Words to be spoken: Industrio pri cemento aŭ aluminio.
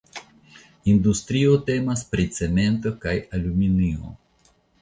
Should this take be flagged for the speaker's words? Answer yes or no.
yes